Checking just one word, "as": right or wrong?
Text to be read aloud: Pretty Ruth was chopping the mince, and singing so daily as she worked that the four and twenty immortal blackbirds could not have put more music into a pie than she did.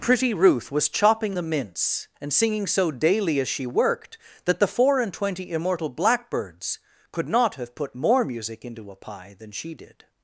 right